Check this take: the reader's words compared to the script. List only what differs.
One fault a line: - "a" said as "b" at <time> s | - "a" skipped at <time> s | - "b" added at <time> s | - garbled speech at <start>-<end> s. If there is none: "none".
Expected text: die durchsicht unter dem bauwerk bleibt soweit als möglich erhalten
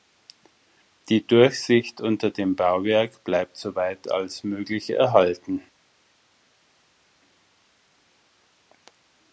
none